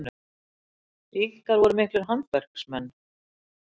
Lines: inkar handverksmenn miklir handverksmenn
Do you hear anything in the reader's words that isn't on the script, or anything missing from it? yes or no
yes